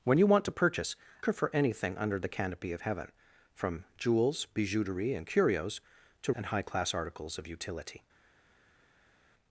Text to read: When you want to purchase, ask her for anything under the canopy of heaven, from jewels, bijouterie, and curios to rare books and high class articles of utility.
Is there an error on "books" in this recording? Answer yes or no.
yes